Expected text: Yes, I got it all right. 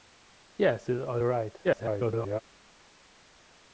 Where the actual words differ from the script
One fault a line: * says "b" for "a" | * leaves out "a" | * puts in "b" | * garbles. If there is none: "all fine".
* leaves out "I got"
* garbles